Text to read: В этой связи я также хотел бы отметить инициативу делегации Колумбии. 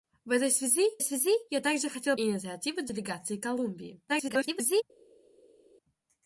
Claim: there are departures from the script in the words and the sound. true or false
true